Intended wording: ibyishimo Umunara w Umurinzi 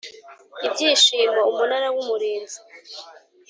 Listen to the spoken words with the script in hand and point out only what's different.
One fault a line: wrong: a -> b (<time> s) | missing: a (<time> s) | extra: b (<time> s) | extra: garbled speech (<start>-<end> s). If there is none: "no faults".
no faults